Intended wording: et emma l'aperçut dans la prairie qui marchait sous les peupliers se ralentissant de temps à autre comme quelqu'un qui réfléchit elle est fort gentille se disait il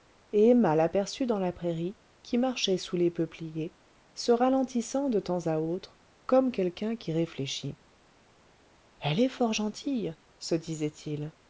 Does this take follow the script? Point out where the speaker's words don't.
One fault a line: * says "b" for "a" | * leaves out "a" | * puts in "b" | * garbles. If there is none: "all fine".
all fine